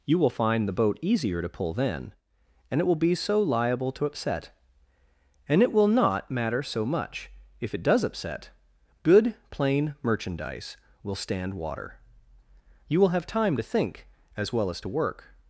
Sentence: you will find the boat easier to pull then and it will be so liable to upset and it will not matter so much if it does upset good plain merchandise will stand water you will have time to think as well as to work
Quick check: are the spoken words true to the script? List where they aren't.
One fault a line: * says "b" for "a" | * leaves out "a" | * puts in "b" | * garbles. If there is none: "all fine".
all fine